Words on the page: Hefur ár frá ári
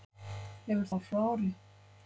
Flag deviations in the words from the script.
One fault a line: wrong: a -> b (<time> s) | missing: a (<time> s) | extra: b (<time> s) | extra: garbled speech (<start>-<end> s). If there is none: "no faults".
no faults